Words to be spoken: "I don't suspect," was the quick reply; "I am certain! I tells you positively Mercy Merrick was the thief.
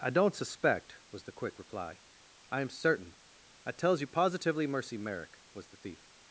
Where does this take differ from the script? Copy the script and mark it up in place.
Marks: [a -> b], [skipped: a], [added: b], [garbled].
"I don't suspect," was the quick reply; "I am certain! I tells you positively Mercy Merrick was the thief.